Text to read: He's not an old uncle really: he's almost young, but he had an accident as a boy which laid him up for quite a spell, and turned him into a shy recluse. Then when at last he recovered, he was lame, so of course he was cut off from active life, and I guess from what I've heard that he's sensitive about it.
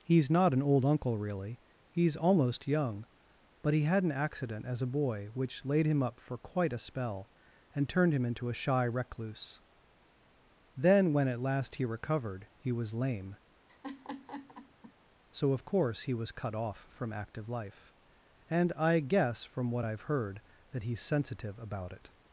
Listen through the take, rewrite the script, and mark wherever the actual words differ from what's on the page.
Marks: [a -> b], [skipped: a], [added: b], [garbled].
He's not an old uncle really: he's almost young, but he had an accident as a boy which laid him up for quite a spell, and turned him into a shy recluse. Then when at last he recovered, he was lame, so of course he was cut off from active life, and I guess from what I've heard that he's sensitive about it.